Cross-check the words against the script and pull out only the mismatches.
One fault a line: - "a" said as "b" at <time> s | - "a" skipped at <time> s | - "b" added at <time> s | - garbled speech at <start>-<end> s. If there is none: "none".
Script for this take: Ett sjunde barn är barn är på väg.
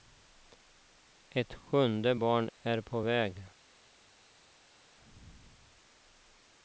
- "barn är" skipped at 2.8 s